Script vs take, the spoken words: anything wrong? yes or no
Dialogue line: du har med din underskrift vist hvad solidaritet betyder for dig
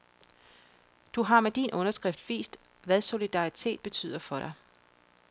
no